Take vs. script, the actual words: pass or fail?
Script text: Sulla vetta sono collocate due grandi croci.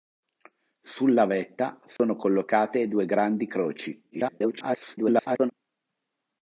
fail